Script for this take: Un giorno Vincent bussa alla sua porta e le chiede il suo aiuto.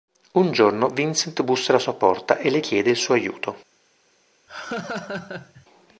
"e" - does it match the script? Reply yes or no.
yes